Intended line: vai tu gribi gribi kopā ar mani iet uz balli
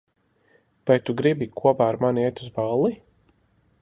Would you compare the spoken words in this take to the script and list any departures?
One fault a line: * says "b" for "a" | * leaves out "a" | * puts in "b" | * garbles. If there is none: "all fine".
* leaves out "gribi"